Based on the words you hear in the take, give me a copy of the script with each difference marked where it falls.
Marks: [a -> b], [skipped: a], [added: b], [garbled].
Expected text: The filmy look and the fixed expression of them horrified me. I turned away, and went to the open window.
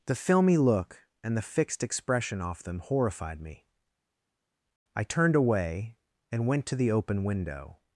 The filmy look and the fixed expression [of -> off] them horrified me. I turned away, and went to the open window.